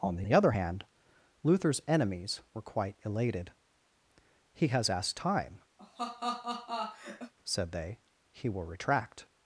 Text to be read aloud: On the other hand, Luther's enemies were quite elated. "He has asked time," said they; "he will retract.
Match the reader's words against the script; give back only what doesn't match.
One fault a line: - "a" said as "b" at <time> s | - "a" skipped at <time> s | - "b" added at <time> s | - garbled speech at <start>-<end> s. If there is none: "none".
- "the" added at 0.2 s